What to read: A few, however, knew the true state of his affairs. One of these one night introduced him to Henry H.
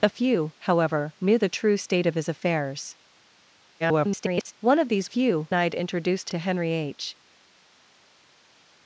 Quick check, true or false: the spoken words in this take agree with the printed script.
false